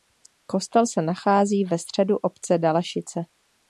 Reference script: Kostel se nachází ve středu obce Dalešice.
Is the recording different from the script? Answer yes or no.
no